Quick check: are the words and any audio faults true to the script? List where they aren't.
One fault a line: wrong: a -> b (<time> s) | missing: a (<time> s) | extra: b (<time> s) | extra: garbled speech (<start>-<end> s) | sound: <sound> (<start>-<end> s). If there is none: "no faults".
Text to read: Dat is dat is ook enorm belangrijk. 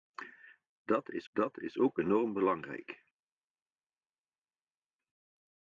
no faults